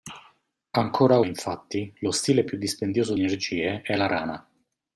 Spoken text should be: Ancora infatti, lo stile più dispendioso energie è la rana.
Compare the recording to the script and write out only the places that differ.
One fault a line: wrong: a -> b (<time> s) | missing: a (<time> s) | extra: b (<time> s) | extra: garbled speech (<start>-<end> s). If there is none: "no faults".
no faults